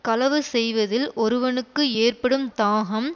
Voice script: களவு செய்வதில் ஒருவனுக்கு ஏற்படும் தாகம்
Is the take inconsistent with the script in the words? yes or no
no